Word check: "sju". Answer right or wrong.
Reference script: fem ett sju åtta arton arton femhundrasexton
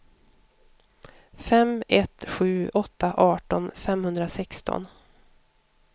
right